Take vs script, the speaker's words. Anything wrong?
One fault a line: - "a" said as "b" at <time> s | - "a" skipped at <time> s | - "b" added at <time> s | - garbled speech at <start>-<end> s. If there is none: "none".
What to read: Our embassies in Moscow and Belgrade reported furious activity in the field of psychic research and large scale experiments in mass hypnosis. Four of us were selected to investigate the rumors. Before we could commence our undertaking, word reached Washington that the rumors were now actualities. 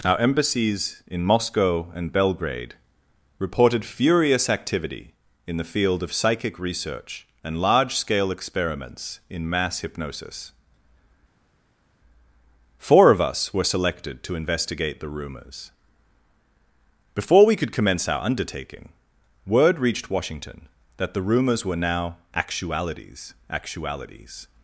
- "actualities" added at 23.5 s